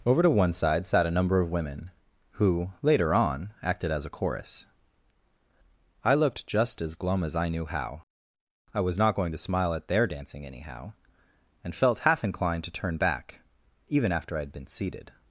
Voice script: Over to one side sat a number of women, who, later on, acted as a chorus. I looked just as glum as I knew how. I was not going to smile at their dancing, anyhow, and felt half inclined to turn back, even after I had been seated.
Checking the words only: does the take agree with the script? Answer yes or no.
yes